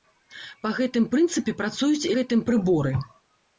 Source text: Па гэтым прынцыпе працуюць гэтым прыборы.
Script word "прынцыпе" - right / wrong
right